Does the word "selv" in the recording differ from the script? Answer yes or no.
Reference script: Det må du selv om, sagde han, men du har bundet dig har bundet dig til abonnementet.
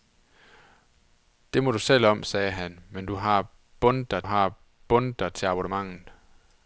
no